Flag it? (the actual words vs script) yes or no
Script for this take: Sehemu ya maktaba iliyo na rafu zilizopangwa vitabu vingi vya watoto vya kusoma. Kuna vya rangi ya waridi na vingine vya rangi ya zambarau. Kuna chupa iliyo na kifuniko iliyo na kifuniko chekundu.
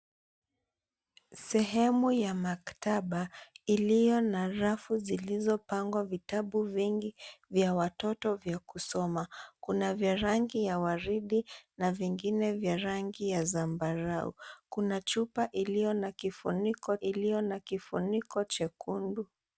no